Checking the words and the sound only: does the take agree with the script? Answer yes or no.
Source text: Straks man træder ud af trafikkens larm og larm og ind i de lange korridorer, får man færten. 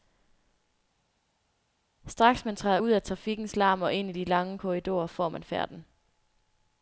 no